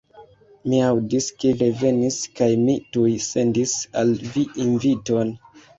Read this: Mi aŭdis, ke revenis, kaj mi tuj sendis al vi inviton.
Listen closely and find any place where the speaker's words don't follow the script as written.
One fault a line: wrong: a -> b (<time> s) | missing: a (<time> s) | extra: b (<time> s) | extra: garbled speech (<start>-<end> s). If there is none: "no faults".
no faults